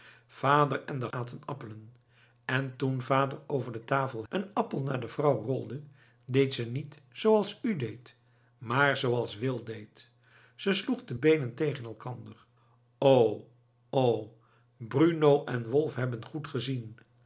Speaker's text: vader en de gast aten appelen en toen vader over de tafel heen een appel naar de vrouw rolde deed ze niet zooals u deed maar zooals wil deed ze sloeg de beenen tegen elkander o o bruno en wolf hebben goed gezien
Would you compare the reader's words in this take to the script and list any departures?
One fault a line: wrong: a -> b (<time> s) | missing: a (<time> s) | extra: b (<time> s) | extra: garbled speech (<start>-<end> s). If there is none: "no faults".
missing: gast (1.1 s)
missing: heen (4.2 s)